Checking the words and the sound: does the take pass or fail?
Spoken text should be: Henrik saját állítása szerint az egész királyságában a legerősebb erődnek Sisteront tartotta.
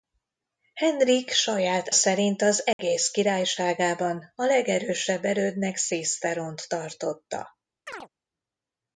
fail